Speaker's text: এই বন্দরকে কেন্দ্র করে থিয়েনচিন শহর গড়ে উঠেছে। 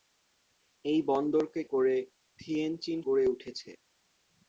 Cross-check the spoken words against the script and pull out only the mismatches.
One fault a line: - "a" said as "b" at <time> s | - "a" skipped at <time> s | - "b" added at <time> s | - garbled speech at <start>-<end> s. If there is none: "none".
- "কেন্দ্র" skipped at 1.6 s
- "শহর" skipped at 3.0 s